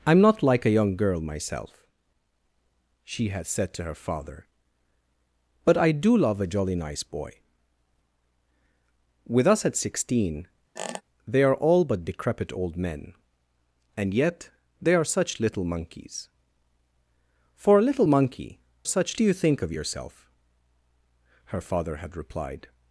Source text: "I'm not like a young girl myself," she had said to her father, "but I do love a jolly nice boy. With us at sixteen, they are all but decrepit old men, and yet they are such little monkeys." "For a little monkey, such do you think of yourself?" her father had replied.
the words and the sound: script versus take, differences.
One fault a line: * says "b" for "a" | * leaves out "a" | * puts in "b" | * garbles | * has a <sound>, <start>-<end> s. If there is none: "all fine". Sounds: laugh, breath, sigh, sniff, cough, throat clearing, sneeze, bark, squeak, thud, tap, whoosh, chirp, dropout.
* has a squeak, 10.8-11.0 s